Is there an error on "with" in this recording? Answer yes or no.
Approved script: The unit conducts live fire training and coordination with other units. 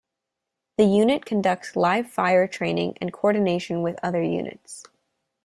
no